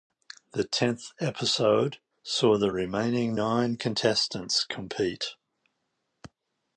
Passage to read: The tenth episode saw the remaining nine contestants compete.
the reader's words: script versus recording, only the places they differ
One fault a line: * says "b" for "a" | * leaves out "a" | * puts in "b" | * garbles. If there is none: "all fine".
all fine